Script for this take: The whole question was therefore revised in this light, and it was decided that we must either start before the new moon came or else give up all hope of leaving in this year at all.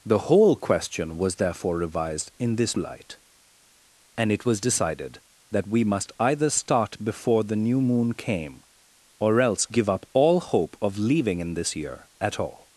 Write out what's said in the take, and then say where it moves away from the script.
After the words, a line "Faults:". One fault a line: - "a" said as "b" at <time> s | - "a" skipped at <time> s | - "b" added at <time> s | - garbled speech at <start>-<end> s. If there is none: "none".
The whole question was therefore revised in this light, and it was decided that we must either start before the new moon came or else give up all hope of leaving in this year at all.
Faults:
none